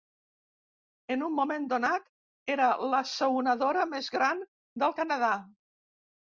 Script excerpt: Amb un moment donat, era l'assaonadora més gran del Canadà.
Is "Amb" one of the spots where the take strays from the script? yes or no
yes